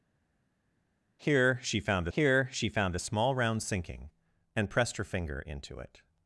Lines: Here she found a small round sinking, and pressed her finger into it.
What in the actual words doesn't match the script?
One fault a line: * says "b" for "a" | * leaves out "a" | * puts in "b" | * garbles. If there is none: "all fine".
* puts in "here she found"